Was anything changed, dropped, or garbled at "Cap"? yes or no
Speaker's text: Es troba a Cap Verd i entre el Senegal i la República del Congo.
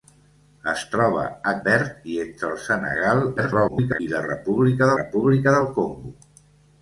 yes